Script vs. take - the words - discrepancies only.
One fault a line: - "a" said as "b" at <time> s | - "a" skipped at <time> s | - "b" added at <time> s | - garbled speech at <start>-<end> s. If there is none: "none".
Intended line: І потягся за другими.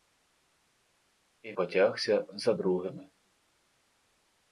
none